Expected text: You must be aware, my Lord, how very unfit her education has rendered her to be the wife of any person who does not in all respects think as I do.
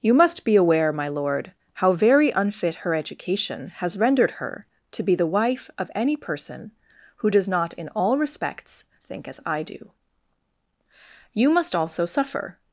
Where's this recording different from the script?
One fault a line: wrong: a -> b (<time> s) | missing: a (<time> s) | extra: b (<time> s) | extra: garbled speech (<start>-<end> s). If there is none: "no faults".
extra: You must also suffer (11.3 s)